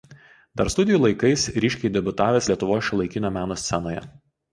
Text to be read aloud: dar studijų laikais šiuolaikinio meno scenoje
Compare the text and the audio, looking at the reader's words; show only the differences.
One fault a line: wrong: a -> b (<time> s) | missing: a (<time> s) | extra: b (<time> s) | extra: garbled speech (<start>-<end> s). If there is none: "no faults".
extra: ryškiai debiutavęs lietuvos (1.6 s)